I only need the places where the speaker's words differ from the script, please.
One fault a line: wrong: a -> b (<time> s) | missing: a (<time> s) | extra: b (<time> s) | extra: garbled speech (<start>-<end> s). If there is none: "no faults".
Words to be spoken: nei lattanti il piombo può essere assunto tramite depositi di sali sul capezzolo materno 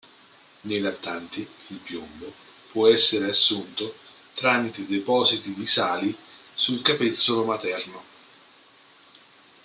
no faults